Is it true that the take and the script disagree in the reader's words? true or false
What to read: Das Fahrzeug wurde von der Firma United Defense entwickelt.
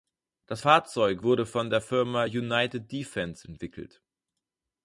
false